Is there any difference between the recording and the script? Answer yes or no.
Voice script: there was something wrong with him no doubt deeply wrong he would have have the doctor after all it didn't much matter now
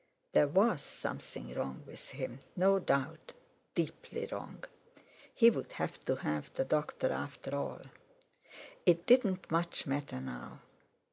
yes